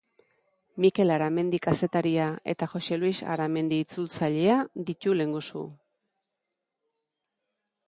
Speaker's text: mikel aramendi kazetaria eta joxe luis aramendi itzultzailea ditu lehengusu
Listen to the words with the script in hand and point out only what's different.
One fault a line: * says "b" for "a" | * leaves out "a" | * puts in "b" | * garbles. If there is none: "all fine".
all fine